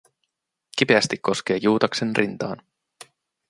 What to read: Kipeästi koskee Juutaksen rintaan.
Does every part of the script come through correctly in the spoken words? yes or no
yes